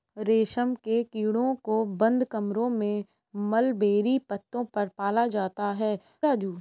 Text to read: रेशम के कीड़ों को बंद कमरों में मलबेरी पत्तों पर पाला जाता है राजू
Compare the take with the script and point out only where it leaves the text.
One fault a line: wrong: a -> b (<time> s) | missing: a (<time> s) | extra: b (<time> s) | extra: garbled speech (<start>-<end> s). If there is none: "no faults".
no faults